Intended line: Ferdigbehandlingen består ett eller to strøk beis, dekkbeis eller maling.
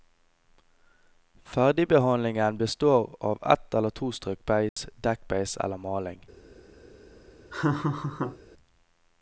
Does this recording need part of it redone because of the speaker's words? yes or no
yes